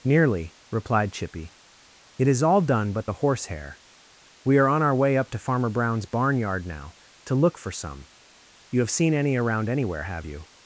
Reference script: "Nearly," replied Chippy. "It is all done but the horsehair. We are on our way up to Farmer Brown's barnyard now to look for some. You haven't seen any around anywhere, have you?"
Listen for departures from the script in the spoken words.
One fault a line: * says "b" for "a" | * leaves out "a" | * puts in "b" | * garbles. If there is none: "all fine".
* says "have" for "haven't"